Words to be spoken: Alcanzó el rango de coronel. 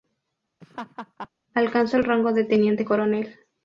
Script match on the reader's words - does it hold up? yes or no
no